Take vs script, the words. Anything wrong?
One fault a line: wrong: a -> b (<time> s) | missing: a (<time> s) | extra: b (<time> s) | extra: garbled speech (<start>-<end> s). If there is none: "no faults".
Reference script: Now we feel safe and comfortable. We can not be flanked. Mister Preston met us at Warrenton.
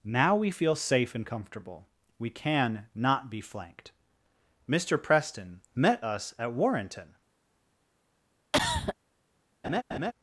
no faults